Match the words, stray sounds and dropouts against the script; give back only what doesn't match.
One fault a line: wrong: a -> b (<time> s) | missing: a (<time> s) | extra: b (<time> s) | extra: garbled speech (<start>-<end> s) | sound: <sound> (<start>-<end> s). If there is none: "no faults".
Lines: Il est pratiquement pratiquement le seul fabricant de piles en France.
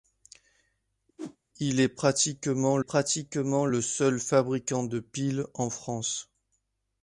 sound: whoosh (1.2-1.4 s)